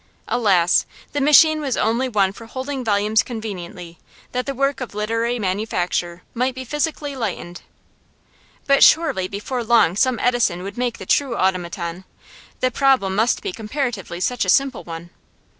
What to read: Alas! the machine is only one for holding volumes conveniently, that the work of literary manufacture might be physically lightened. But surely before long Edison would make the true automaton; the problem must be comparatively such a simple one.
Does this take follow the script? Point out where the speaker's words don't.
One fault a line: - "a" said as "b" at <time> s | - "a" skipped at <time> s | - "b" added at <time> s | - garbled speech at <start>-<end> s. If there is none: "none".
- "is" said as "was" at 1.6 s
- "some" added at 10.0 s